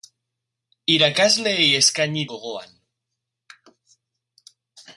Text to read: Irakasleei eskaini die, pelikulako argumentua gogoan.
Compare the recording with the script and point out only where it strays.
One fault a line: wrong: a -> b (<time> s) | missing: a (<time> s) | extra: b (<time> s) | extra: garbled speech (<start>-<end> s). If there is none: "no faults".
missing: die pelikulako argumentua (2.2 s)